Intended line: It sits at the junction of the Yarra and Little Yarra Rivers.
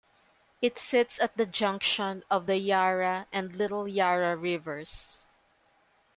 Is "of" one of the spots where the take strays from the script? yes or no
no